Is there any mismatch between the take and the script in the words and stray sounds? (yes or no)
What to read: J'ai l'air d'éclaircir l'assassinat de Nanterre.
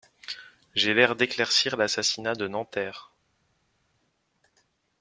no